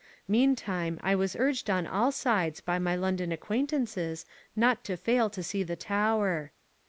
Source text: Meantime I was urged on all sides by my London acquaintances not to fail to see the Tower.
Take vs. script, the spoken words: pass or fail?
pass